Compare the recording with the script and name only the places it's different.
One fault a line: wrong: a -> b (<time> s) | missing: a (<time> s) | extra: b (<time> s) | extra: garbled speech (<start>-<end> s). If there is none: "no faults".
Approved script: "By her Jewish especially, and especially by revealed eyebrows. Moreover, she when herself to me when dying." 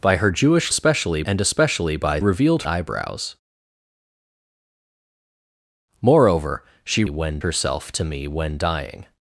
no faults